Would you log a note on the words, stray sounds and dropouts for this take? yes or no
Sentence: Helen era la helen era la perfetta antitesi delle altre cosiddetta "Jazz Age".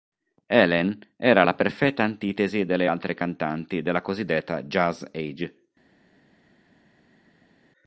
yes